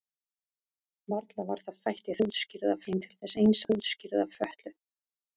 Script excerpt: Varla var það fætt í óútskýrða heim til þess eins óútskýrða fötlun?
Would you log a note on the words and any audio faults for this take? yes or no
no